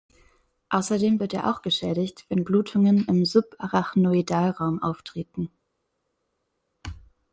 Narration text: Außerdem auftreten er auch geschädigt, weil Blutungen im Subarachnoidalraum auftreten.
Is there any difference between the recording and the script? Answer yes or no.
yes